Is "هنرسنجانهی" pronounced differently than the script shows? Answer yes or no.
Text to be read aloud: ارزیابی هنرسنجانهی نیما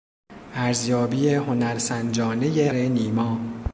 no